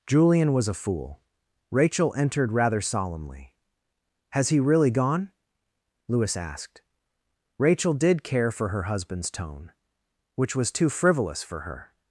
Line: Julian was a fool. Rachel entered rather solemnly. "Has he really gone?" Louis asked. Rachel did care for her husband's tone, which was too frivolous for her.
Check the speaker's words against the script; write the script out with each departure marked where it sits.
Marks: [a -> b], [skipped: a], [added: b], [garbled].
Julian was a fool. Rachel entered rather solemnly. "Has he really gone?" Louis asked. Rachel did care for her husband's tone, which was too frivolous for her.